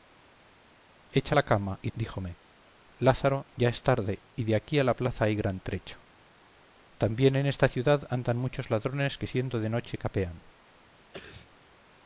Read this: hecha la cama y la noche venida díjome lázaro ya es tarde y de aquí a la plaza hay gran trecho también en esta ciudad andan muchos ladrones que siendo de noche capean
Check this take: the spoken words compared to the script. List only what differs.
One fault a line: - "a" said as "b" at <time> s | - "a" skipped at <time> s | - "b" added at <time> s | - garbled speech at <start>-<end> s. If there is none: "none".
- "la noche venida" skipped at 1.9 s